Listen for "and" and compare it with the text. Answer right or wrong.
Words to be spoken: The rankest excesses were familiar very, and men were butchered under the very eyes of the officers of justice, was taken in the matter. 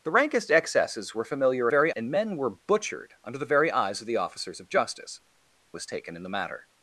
right